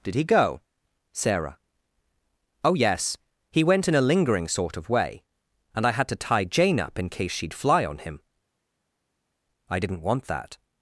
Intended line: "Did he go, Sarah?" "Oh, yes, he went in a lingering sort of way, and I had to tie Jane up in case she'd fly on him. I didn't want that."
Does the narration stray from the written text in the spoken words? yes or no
no